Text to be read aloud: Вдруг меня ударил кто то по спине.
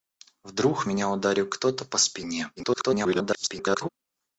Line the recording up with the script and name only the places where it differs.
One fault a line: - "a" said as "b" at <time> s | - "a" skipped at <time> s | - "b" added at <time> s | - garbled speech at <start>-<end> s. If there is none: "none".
- garbled speech at 2.6-3.9 s